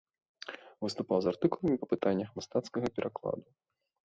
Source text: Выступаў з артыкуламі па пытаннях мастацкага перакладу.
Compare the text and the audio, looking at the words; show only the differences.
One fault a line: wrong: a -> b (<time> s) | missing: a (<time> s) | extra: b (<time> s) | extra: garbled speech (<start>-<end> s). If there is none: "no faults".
no faults